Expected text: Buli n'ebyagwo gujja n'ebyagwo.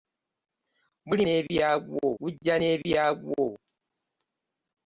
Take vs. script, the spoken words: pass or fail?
pass